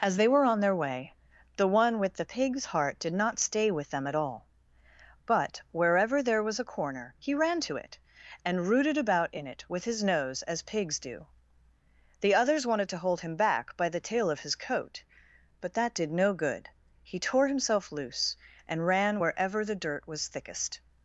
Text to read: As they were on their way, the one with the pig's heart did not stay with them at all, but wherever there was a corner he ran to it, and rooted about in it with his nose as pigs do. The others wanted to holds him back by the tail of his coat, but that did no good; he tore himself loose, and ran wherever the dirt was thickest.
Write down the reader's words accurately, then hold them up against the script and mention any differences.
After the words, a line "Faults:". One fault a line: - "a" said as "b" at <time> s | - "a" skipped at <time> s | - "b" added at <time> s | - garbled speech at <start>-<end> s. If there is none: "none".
As they were on their way, the one with the pig's heart did not stay with them at all, but wherever there was a corner he ran to it, and rooted about in it with his nose as pigs do. The others wanted to hold him back by the tail of his coat, but that did no good; he tore himself loose, and ran wherever the dirt was thickest.
Faults:
- "holds" said as "hold" at 13.0 s